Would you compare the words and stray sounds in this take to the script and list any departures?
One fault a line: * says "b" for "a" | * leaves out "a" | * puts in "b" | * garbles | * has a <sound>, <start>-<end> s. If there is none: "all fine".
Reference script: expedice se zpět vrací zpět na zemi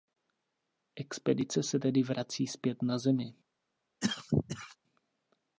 * says "tedy" for "zpět"
* has a cough, 4.0-4.8 s